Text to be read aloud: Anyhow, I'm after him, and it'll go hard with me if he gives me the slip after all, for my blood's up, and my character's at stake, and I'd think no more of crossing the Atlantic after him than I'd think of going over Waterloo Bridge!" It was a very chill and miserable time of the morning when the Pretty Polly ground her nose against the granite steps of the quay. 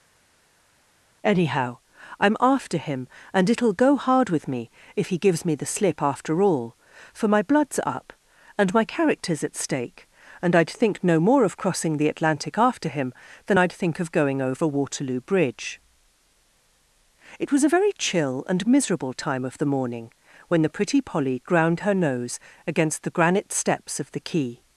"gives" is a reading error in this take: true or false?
false